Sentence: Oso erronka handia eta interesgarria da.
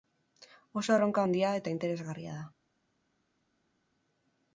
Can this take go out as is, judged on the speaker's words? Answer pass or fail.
pass